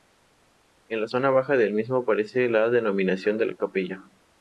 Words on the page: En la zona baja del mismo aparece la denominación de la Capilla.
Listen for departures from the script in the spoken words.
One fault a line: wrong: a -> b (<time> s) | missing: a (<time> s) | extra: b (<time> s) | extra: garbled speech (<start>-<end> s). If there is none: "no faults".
no faults